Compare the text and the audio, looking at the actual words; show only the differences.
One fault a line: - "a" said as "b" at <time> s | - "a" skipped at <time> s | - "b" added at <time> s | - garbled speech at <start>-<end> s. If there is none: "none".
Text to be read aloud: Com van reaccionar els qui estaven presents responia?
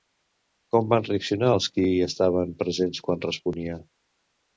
- "quan" added at 3.1 s